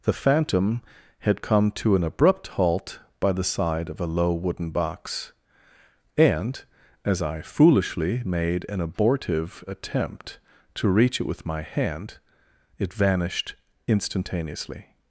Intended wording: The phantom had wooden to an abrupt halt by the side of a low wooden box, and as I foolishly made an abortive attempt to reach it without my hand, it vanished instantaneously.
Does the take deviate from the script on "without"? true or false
true